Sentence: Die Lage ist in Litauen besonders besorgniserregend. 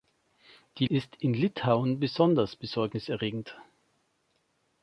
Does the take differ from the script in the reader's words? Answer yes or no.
yes